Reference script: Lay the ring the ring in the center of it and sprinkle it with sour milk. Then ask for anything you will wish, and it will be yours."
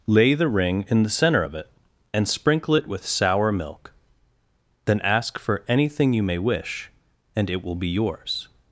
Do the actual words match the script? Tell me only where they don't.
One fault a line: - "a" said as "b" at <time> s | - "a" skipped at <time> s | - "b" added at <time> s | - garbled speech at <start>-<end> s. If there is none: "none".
- "the ring" skipped at 0.8 s
- "will" said as "may" at 6.2 s